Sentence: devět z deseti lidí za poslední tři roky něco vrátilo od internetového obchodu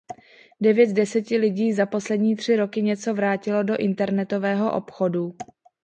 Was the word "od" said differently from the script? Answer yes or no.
yes